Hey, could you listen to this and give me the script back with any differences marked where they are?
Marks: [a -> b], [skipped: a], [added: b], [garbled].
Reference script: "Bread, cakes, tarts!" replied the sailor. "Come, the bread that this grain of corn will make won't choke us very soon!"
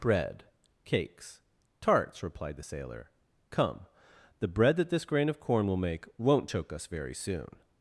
"Bread, cakes, tarts!" replied the sailor. "Come, the bread that this grain of corn will make won't choke us very soon!"